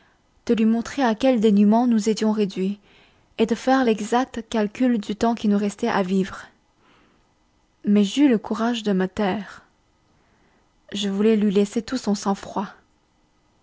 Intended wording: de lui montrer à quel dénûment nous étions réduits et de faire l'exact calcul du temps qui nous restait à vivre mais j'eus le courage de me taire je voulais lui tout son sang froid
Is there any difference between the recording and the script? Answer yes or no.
yes